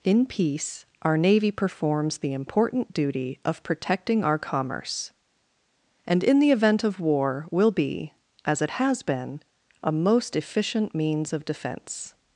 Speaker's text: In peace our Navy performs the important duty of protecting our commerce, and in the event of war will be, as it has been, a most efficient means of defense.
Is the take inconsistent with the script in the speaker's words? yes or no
no